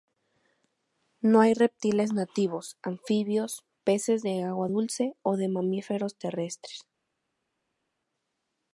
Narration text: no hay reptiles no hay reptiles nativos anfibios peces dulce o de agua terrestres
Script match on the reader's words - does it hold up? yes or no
no